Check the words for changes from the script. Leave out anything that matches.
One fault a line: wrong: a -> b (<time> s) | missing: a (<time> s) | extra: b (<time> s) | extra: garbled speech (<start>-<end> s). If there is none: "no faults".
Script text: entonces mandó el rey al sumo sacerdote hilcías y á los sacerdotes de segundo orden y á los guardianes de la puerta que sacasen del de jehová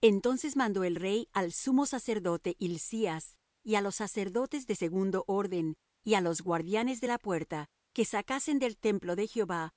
extra: templo (8.8 s)